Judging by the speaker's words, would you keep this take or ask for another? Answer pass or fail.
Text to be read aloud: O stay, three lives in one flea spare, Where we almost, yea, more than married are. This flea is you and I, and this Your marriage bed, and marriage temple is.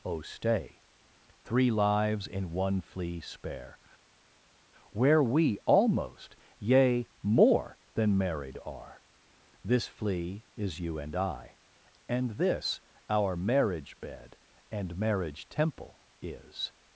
fail